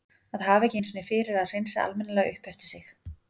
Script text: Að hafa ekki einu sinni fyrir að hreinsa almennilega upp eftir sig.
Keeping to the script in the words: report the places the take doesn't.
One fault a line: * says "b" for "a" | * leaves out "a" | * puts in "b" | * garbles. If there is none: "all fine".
all fine